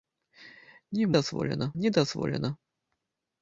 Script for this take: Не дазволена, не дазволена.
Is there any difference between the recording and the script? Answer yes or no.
no